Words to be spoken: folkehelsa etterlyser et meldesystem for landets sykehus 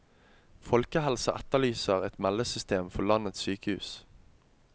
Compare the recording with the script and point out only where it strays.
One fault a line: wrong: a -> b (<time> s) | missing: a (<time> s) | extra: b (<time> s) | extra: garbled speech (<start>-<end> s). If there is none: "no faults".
no faults